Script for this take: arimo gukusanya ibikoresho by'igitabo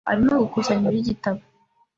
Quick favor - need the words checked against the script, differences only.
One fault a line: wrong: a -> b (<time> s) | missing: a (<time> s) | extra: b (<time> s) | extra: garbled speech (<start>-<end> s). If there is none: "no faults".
missing: ibikoresho (0.9 s)